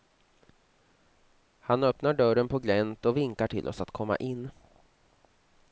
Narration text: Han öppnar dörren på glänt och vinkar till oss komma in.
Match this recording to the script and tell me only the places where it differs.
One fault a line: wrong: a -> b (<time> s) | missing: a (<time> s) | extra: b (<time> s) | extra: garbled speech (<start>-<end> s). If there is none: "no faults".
extra: att (3.8 s)